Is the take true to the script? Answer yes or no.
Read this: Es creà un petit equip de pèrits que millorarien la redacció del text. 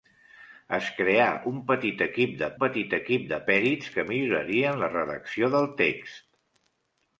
no